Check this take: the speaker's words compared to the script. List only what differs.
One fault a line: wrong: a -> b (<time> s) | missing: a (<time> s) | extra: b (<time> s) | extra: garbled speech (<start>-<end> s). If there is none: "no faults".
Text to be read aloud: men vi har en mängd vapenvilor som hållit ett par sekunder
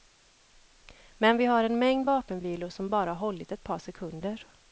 extra: bara (2.9 s)